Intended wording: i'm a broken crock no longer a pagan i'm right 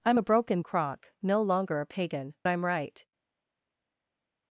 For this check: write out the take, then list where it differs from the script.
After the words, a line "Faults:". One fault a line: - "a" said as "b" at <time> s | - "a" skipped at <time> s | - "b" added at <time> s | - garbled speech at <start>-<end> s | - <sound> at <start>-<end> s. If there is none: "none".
i'm a broken crock no longer a pagan i'm right
Faults:
none